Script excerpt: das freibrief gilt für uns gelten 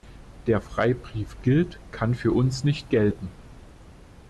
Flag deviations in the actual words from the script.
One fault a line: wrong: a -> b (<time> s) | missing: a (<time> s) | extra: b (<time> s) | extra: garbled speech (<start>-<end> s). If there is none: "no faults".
wrong: das -> der (0.5 s)
extra: kann (1.9 s)
extra: nicht (2.6 s)